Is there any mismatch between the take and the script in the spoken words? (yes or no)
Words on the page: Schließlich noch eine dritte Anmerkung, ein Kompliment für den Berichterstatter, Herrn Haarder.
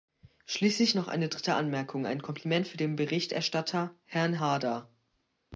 no